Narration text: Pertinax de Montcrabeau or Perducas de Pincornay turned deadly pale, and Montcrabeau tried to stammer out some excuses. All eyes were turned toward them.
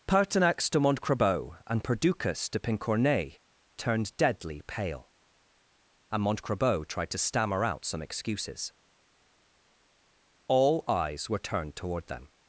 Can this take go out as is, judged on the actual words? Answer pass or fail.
fail